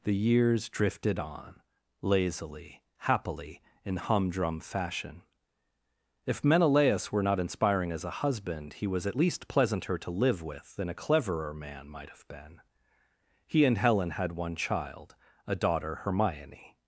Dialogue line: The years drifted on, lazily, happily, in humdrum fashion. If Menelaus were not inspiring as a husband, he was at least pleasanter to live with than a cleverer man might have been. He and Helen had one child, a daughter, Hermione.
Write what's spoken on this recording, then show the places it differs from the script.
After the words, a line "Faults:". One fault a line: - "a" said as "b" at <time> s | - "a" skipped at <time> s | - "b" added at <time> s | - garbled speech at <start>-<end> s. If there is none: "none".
The years drifted on, lazily, happily, in humdrum fashion. If Menelaus were not inspiring as a husband, he was at least pleasanter to live with than a cleverer man might have been. He and Helen had one child, a daughter, Hermione.
Faults:
none